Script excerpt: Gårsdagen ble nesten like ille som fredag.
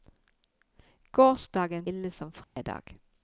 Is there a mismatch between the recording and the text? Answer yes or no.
yes